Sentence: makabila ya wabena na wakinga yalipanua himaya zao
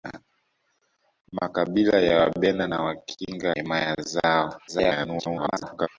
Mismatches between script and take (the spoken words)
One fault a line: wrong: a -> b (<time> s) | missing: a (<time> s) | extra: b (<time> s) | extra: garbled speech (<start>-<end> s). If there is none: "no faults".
missing: yalipanua (3.5 s)
extra: garbled speech (4.7-5.9 s)